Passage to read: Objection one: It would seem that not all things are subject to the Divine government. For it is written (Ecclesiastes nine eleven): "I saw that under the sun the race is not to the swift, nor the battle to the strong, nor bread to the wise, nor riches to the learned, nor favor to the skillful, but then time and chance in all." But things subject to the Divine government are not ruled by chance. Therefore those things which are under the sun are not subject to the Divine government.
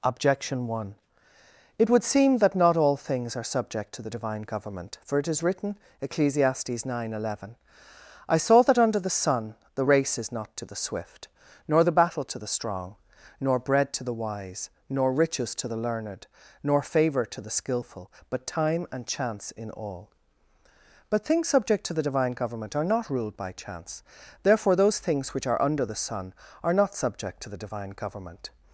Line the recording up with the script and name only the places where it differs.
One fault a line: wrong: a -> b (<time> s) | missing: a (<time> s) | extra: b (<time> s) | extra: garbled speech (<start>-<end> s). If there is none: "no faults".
missing: then (18.5 s)